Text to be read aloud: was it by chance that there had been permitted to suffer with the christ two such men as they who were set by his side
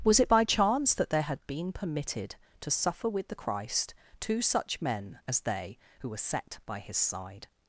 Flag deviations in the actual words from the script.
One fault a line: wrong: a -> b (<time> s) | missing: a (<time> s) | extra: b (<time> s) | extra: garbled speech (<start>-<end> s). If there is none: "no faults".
no faults